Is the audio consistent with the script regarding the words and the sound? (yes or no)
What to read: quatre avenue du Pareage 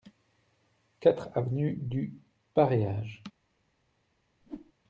no